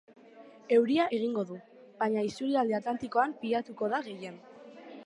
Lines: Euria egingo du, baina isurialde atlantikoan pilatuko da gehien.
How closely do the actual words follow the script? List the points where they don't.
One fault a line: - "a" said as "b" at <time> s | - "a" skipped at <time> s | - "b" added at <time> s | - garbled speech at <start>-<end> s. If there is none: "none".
none